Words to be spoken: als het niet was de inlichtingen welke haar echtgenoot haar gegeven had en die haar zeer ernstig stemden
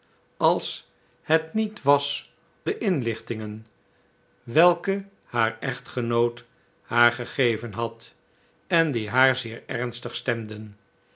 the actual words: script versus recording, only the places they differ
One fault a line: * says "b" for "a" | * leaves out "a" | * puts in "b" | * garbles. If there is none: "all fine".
all fine